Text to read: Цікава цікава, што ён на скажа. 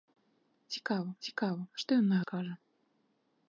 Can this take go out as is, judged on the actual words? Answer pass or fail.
pass